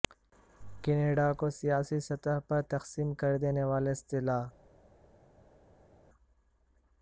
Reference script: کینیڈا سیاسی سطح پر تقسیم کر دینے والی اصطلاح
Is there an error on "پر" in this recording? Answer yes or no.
no